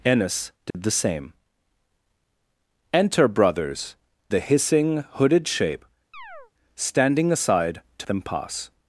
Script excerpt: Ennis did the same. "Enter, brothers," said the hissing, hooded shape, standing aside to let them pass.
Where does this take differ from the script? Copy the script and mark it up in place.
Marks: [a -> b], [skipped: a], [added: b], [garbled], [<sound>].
Ennis did [dropout] the same. "Enter, brothers," [skipped: said] the hissing, hooded shape, [chirp] standing aside to [skipped: let] them pass.